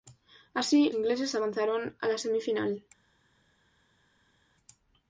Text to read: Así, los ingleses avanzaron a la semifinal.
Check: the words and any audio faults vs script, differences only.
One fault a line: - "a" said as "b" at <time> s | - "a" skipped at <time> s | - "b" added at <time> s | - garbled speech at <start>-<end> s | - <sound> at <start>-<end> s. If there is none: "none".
- "los" skipped at 0.9 s